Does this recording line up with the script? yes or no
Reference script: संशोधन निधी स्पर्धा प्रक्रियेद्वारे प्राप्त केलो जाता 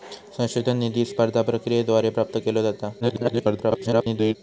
no